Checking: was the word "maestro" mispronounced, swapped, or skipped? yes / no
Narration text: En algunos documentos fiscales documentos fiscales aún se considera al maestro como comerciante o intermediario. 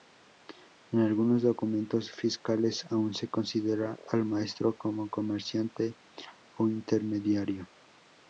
no